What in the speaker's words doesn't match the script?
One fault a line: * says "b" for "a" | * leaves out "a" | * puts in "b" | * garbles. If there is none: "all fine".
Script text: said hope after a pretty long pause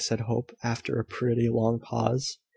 all fine